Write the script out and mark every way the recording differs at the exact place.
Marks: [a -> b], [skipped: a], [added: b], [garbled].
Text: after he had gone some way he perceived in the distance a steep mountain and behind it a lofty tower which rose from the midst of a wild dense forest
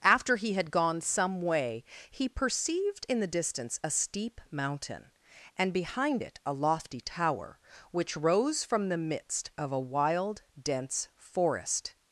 after he had gone some way he perceived in the distance a steep mountain and behind it a lofty tower which rose from the midst of a wild dense forest